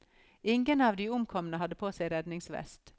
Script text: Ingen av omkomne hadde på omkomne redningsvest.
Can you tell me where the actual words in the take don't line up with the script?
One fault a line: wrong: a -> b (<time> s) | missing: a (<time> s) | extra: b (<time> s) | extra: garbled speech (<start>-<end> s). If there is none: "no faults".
extra: de (1.0 s)
wrong: omkomne -> seg (1.9 s)